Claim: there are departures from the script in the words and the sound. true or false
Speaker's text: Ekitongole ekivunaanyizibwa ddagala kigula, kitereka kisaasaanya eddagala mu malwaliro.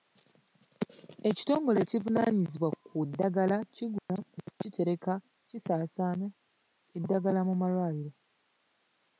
true